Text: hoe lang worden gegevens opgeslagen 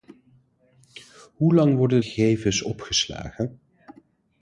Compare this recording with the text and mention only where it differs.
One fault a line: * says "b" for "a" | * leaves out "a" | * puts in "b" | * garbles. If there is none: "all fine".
all fine